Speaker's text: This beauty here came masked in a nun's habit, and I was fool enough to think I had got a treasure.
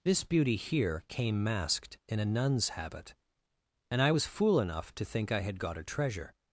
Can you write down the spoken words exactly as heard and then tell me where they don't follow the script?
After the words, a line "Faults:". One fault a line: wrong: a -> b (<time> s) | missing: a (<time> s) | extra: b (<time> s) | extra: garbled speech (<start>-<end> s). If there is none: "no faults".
This beauty here came masked in a nun's habit, and I was fool enough to think I had got a treasure.
Faults:
no faults